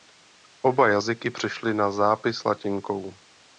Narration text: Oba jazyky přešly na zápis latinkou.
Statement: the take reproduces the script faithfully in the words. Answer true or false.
true